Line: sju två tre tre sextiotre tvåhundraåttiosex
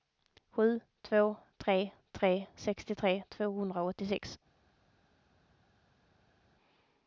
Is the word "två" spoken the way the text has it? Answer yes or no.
yes